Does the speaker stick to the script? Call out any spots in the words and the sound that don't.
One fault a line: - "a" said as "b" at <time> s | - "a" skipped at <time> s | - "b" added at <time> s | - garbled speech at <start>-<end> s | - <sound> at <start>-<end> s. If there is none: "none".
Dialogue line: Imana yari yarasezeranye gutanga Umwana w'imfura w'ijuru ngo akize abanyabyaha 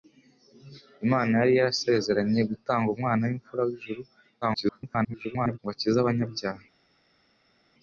- garbled speech at 4.4-5.6 s